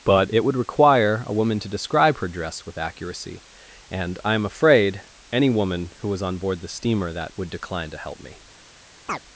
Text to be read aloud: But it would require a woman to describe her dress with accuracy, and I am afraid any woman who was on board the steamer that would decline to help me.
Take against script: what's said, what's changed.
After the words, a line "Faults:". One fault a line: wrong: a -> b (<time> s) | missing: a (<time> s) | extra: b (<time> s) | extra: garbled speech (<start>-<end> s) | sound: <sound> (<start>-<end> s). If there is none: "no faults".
But it would require a woman to describe her dress with accuracy, and I am afraid any woman who was on board the steamer that would decline to help me.
Faults:
sound: chirp (9.1-9.2 s)